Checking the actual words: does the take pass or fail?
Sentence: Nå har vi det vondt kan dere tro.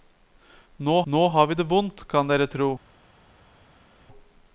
fail